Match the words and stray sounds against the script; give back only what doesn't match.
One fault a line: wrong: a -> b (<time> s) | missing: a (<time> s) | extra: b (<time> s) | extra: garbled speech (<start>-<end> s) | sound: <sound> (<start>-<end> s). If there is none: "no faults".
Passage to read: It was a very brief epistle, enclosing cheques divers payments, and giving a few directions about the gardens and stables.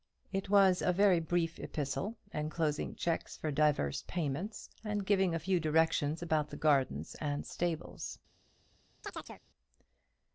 extra: for (3.4 s)
sound: chirp (9.0-9.4 s)